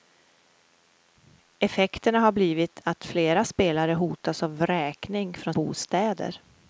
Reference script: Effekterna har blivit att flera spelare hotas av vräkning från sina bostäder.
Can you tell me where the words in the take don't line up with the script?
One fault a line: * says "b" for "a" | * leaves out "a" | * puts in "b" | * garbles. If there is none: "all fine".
* leaves out "sina"